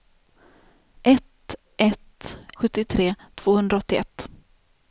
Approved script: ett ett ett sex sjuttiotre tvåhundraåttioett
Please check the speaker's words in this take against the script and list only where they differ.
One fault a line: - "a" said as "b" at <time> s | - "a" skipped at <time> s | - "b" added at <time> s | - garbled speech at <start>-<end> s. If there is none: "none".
- "ett sex" skipped at 2.4 s